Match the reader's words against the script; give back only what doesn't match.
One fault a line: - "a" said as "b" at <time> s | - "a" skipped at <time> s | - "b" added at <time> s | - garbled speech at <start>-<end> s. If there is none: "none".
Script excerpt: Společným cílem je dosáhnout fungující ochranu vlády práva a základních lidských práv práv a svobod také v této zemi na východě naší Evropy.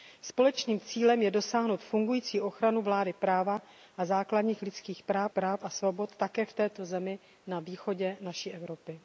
none